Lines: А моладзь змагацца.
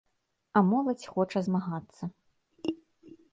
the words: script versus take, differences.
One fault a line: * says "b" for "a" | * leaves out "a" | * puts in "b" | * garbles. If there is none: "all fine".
* puts in "хоча"